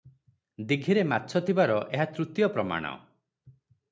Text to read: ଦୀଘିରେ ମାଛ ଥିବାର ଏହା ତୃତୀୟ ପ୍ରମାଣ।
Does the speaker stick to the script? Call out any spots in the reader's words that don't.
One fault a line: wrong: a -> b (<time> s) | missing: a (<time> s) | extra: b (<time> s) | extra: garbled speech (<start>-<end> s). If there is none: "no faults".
no faults